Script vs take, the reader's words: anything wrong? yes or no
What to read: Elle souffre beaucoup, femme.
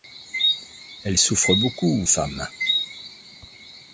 no